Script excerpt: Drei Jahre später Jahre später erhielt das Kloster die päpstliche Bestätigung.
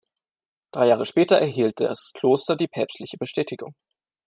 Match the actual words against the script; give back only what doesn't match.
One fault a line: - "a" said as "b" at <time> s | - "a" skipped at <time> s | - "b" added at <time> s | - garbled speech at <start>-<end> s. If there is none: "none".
- "Jahre später" skipped at 1.4 s